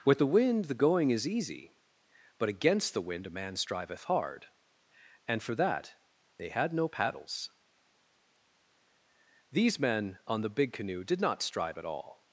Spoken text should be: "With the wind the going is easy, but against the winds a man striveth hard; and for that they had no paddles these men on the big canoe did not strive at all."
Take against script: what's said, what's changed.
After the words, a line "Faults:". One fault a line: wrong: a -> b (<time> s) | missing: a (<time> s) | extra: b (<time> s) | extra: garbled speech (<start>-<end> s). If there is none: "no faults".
"With the wind the going is easy, but against the wind a man striveth hard; and for that they had no paddles these men on the big canoe did not strive at all."
Faults:
wrong: winds -> wind (3.0 s)